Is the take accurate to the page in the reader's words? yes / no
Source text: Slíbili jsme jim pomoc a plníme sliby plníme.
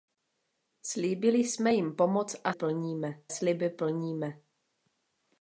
yes